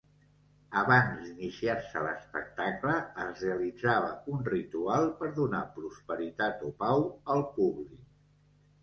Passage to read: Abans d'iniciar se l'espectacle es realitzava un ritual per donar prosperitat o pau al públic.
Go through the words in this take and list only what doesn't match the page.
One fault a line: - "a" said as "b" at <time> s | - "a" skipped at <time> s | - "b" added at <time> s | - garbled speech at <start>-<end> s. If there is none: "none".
none